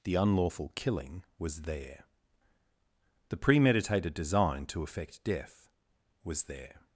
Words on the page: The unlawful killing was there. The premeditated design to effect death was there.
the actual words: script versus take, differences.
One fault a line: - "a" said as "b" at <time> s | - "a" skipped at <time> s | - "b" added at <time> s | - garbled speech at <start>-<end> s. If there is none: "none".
none